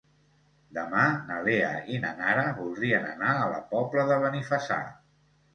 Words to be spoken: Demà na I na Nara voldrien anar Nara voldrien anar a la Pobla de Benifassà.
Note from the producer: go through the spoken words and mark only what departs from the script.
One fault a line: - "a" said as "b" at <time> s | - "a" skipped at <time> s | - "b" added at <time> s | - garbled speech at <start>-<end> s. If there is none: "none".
- "Lea" added at 1.5 s
- "Nara voldrien anar" skipped at 3.4 s